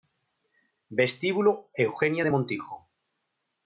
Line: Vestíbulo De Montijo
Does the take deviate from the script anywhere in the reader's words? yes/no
yes